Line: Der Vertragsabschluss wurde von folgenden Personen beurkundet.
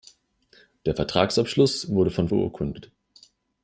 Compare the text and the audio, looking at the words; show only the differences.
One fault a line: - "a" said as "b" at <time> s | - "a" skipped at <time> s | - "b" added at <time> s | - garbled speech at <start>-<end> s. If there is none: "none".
- "folgenden Personen" skipped at 2.3 s